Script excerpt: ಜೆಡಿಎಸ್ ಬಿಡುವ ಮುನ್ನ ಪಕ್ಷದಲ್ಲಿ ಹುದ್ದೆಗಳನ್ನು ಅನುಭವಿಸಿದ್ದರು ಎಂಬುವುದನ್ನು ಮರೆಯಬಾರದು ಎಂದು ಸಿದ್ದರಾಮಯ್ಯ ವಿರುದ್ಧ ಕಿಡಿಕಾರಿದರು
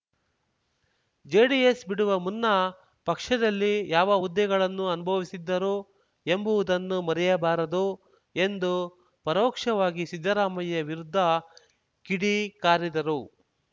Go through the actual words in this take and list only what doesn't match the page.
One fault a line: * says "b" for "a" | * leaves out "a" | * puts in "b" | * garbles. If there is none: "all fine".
* puts in "ಯಾವ"
* puts in "ಪರೋಕ್ಷವಾಗಿ"